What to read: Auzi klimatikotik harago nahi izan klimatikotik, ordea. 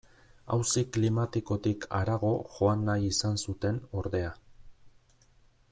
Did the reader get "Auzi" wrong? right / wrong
right